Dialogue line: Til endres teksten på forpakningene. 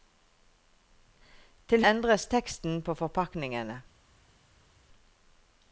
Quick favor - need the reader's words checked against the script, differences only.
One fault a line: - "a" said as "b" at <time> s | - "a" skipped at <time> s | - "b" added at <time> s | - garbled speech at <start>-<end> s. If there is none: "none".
none